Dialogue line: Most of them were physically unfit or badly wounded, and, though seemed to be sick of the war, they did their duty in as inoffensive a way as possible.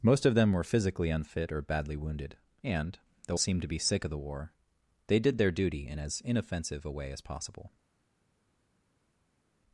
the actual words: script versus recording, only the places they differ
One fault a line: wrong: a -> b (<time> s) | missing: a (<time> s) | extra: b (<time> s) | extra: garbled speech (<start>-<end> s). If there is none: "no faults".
no faults